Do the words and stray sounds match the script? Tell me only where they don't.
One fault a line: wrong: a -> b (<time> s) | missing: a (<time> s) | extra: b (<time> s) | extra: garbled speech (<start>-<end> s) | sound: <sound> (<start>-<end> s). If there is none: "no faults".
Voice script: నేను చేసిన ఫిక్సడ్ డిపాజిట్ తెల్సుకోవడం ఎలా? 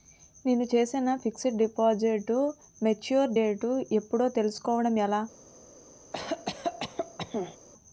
extra: మెచ్యూర్ డేట్ ఎప్పుడో (2.8 s)
sound: cough (6.1-7.6 s)